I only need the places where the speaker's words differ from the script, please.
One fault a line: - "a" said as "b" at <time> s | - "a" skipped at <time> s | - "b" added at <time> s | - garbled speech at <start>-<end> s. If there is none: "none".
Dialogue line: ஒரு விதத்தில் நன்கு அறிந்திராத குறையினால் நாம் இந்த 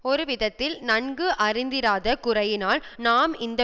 none